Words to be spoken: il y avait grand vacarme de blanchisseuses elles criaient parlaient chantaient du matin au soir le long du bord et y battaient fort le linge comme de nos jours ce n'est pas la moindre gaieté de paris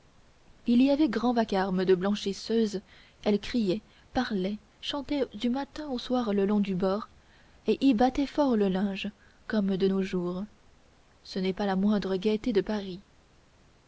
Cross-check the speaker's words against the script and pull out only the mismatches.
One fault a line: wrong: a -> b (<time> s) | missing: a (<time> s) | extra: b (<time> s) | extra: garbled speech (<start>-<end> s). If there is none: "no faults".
no faults